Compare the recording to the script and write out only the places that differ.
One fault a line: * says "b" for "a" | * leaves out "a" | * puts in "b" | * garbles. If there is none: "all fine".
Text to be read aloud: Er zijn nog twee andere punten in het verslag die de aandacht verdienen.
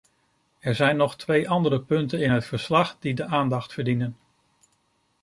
all fine